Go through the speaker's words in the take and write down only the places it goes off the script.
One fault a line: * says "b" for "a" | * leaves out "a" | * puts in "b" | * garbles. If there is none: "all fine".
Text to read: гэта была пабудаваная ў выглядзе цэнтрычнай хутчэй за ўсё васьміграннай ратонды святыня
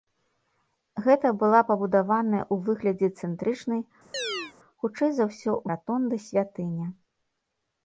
* leaves out "васьміграннай"